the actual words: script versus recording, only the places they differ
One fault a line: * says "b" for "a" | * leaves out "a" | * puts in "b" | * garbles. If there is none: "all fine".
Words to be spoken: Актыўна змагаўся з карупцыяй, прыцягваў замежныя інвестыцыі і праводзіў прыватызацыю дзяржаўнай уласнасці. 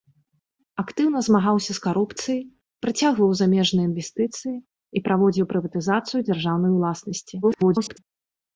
* garbles